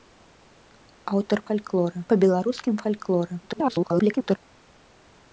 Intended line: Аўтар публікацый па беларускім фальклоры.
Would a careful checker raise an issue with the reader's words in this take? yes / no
yes